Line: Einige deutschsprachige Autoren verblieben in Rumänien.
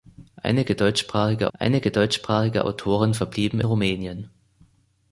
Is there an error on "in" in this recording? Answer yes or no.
yes